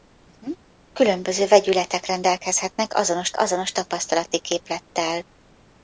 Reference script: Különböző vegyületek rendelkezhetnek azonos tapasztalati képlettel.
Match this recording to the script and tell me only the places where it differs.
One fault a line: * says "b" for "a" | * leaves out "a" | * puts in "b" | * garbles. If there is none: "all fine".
* puts in "azonos"